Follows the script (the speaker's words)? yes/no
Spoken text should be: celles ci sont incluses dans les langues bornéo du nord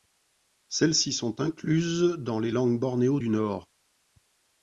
yes